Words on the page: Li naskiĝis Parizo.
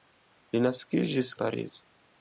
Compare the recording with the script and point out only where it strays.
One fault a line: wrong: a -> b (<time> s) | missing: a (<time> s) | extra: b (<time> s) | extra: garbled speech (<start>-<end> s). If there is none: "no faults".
no faults